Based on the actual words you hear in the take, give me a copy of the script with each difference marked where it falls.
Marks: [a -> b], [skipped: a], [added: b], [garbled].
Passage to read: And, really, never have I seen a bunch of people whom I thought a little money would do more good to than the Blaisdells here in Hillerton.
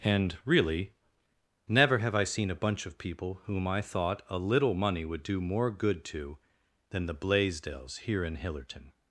And, really, never have I seen a bunch of people whom I thought a little money would do more good to than the Blaisdells here in Hillerton.